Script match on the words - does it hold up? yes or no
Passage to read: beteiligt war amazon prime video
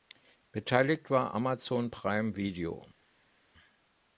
yes